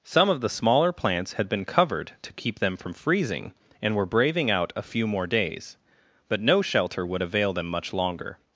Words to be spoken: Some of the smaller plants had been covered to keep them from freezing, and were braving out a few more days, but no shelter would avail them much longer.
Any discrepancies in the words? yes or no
no